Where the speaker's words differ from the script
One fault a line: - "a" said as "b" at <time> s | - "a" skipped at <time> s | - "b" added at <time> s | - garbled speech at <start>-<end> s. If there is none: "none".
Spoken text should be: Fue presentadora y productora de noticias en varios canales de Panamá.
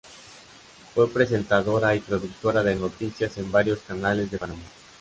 none